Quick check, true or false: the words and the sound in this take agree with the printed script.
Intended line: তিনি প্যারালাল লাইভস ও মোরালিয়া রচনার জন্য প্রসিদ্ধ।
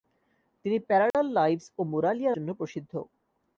false